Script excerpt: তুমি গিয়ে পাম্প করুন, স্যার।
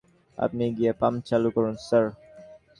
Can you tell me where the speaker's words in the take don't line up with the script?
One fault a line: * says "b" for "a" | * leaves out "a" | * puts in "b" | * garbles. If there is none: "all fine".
* says "আপনি" for "তুমি"
* puts in "চালু"